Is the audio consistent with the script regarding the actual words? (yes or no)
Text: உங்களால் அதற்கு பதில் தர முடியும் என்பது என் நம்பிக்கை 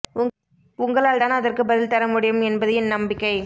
no